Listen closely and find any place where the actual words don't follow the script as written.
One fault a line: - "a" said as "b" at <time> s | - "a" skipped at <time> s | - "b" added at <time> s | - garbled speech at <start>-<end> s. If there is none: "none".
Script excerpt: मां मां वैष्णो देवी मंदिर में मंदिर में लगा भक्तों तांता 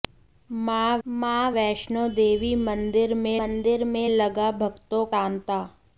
none